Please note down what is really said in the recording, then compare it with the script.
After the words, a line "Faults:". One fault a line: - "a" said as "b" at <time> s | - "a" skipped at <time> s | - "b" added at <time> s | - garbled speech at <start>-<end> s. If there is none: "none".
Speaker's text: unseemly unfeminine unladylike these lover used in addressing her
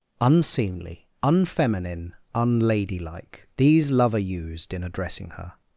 unseemly unfeminine unladylike these lover used in addressing her
Faults:
none